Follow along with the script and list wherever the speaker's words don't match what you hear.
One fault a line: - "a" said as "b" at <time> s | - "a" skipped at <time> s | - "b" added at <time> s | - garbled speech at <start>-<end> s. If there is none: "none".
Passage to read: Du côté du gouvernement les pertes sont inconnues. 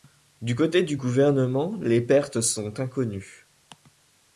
none